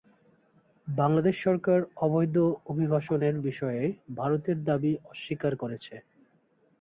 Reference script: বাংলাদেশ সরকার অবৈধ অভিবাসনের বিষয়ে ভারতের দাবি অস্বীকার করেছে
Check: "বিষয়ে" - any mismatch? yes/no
no